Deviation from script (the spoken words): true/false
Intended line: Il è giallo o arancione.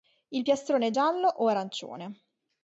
true